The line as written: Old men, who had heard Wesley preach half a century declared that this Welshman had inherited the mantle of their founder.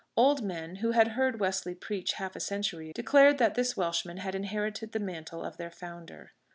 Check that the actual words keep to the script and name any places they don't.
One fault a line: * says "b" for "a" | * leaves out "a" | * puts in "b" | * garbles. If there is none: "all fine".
all fine